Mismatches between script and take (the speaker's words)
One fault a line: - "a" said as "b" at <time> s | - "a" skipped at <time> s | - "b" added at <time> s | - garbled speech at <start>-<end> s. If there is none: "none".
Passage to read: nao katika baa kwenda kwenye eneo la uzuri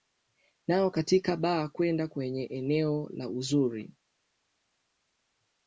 none